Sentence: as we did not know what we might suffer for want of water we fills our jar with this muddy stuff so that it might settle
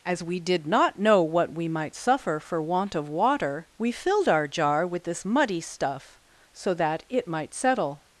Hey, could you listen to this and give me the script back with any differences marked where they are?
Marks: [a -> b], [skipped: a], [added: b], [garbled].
as we did not know what we might suffer for want of water we [fills -> filled] our jar with this muddy stuff so that it might settle